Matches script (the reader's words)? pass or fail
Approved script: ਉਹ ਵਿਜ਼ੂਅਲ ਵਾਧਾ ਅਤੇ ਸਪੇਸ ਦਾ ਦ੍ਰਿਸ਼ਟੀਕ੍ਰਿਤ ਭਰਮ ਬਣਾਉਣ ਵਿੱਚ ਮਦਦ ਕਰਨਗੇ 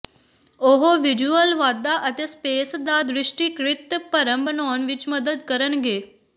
pass